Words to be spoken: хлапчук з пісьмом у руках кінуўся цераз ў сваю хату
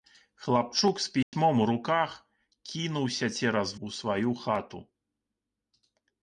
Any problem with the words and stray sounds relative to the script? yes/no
yes